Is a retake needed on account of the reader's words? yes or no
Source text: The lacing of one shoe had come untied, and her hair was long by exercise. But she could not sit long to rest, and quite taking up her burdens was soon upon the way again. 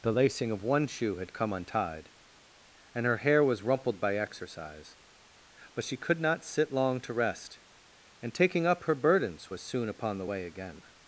yes